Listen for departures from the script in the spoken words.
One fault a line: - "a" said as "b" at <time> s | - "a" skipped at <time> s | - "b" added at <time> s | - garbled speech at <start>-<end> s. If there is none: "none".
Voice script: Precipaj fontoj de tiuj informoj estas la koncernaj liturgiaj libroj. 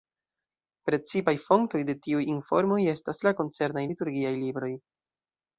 none